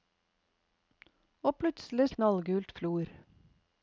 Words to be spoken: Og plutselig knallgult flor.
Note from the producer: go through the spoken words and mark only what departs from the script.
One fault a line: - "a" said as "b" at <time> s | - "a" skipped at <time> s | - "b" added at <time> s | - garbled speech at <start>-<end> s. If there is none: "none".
none